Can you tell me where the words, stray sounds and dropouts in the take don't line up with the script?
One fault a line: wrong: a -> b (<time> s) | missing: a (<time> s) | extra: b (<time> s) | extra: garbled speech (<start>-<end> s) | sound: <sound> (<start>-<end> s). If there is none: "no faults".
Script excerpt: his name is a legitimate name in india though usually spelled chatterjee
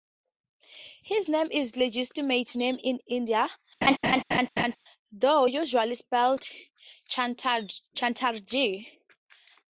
sound: laugh (3.8-4.8 s)